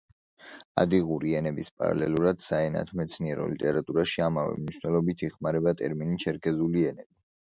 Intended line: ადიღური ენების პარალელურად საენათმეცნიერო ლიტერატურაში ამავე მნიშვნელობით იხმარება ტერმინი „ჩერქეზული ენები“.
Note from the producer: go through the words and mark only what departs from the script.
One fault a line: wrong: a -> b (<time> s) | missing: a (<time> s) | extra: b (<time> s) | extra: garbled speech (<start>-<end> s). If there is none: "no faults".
no faults